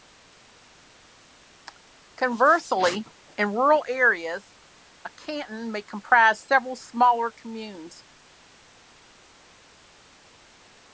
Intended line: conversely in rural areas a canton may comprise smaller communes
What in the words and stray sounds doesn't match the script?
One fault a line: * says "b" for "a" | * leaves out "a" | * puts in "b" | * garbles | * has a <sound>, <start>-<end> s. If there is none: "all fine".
* puts in "several"